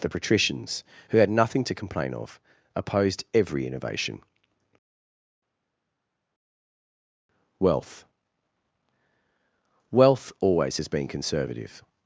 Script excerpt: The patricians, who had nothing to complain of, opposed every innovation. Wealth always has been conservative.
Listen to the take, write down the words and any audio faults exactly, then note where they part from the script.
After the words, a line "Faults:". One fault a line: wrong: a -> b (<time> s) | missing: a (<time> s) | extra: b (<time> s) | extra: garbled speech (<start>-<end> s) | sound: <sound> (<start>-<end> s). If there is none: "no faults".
The patricians, who had nothing to complain of, opposed every innovation. Wealth Wealth always has been conservative.
Faults:
extra: Wealth (9.9 s)